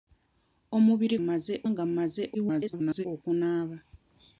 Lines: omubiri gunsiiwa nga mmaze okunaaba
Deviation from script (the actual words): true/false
true